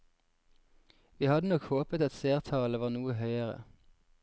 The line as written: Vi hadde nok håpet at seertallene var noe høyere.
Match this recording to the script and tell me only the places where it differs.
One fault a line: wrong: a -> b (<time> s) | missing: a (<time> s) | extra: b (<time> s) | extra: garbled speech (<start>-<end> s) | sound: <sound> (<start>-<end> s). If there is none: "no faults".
no faults